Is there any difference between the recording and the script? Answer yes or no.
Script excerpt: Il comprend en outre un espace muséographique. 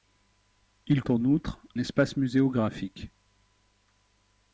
yes